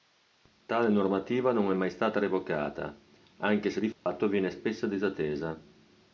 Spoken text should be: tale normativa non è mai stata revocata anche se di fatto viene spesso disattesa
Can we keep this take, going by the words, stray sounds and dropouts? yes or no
no